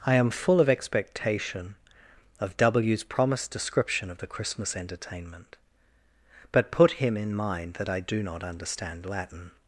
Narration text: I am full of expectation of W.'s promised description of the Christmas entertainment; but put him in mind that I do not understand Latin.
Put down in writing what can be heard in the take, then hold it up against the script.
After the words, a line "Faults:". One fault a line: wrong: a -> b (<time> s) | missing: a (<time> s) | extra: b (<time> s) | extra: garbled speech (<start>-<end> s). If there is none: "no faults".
I am full of expectation of W.'s promised description of the Christmas entertainment; but put him in mind that I do not understand Latin.
Faults:
no faults